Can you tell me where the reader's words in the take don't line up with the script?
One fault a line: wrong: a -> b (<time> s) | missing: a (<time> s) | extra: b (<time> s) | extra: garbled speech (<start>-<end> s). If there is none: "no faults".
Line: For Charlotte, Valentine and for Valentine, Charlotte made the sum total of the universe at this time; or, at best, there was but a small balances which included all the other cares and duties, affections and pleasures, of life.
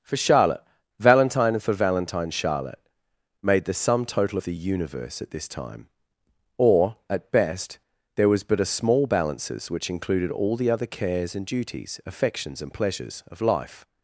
no faults